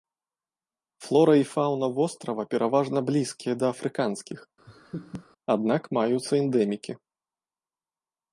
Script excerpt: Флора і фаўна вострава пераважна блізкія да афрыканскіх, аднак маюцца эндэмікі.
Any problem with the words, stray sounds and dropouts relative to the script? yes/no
yes